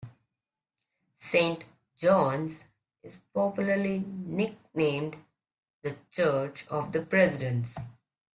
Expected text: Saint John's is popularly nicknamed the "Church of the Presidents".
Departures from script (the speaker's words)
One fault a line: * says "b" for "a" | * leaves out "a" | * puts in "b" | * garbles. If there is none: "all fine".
all fine